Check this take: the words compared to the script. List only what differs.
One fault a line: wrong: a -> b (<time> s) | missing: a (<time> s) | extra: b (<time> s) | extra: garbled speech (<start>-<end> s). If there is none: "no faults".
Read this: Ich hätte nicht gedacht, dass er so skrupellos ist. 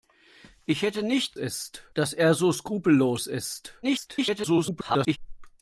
wrong: gedacht -> ist (1.4 s)
extra: garbled speech (3.8-5.2 s)